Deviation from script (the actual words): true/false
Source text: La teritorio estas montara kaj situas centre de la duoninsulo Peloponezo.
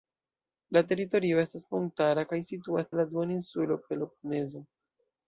true